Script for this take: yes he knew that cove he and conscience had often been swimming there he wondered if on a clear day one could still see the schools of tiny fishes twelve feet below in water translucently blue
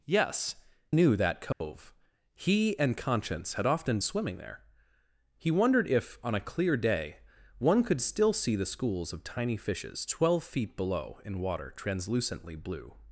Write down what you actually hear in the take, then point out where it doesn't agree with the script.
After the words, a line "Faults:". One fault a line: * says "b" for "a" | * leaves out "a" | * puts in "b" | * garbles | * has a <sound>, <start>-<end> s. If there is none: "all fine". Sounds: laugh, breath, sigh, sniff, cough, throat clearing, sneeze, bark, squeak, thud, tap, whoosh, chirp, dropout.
yes knew that cove he and conscience had often swimming there he wondered if on a clear day one could still see the schools of tiny fishes twelve feet below in water translucently blue
Faults:
* leaves out "he"
* has a dropout, 1.5-1.6 s
* leaves out "been"